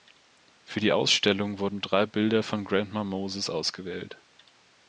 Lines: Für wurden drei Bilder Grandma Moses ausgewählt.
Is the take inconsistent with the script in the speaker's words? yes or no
yes